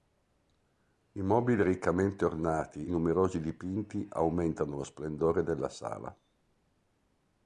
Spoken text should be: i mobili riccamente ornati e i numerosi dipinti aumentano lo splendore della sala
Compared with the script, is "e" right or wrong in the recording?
wrong